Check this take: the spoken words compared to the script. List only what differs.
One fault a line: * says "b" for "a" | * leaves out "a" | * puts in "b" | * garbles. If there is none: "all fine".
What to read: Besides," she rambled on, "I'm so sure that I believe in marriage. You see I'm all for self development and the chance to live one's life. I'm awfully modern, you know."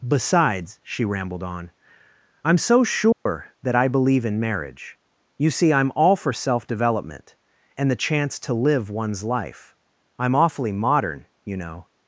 all fine